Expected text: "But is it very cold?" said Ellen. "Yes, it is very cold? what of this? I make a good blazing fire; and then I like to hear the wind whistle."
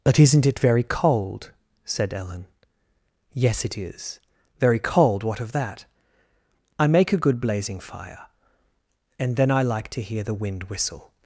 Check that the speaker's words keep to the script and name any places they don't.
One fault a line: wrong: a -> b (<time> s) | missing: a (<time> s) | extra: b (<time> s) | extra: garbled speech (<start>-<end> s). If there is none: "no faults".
wrong: is -> isn't (0.2 s)
wrong: this -> that (5.5 s)